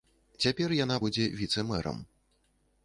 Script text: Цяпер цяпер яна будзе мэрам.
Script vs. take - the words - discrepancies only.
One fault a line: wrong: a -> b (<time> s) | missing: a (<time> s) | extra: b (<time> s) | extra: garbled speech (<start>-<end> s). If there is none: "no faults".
missing: цяпер (0.7 s)
extra: віцэ (1.4 s)